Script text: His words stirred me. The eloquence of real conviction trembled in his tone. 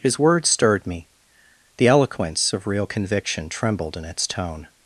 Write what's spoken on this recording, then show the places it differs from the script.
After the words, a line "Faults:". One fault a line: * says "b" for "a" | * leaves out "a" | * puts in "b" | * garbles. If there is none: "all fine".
His words stirred me. The eloquence of real conviction trembled in its tone.
Faults:
* says "its" for "his"